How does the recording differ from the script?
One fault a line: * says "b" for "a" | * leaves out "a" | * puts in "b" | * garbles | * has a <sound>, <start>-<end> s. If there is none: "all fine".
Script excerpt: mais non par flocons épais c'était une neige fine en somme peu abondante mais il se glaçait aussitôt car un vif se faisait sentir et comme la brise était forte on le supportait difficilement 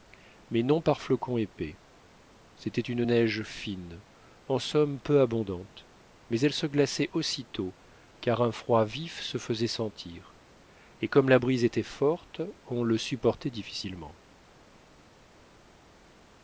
* says "elle" for "il"
* puts in "froid"